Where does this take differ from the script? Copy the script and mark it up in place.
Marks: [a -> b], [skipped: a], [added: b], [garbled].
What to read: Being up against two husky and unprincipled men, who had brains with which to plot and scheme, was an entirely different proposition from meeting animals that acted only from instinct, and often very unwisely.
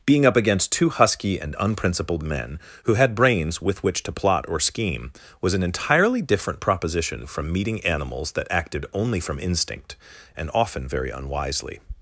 Being up against two husky and unprincipled men, who had brains with which to plot [and -> or] scheme, was an entirely different proposition from meeting animals that acted only from instinct, and often very unwisely.